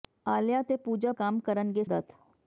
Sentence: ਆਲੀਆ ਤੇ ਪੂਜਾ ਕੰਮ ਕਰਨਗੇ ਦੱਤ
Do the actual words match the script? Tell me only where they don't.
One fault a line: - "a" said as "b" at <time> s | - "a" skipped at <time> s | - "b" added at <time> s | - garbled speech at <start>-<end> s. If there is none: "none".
none